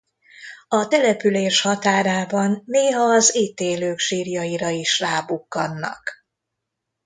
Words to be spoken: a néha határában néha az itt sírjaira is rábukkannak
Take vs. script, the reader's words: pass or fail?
fail